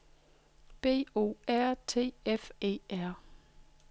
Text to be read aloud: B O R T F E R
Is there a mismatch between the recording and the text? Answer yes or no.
no